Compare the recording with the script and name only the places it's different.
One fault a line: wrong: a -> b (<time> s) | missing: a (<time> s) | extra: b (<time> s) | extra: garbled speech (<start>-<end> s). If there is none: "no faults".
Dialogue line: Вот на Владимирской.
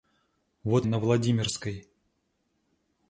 no faults